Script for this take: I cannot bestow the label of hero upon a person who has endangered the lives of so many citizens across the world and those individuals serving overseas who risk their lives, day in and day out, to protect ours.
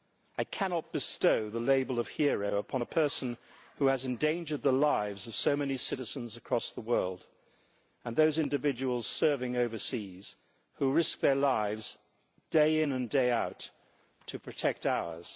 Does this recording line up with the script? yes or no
yes